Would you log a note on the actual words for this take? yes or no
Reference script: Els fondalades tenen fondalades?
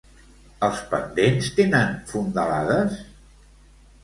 yes